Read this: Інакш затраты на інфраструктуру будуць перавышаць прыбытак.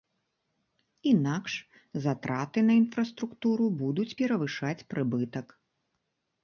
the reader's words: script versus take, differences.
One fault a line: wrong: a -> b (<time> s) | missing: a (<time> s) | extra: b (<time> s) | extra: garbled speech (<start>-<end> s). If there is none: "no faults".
no faults